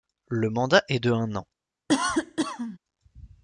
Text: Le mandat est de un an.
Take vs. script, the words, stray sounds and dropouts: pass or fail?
fail